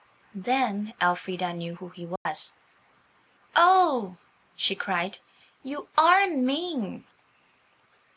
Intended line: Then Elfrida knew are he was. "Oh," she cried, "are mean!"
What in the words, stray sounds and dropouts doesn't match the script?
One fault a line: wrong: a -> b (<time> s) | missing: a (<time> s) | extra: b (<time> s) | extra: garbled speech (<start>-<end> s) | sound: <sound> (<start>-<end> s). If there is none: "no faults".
wrong: are -> who (1.7 s)
sound: dropout (2.2-2.3 s)
extra: you (5.6 s)